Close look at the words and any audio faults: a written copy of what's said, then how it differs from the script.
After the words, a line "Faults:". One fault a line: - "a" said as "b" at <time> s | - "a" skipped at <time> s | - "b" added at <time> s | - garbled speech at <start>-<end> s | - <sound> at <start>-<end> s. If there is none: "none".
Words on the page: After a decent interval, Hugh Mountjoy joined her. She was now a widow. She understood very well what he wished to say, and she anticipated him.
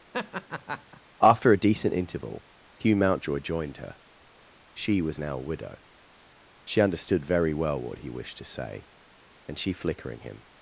After a decent interval, Hugh Mountjoy joined her. She was now a widow. She understood very well what he wished to say, and she flickering him.
Faults:
- laugh at 0.1-1.0 s
- "anticipated" said as "flickering" at 9.7 s